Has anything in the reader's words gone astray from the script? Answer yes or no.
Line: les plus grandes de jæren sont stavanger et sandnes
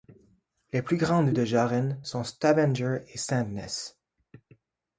no